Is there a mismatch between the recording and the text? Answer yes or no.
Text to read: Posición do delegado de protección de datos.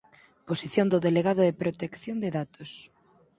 no